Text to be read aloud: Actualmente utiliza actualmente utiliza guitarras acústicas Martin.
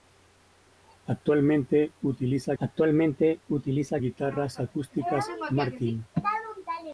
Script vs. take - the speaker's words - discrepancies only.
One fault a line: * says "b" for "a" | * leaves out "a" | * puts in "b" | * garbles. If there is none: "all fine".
all fine